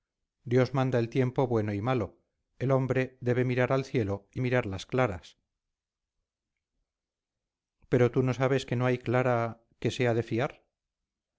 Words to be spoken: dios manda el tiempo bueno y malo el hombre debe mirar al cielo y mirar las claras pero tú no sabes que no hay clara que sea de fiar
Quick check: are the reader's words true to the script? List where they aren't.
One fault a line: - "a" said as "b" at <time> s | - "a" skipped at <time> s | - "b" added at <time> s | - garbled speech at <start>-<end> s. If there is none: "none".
none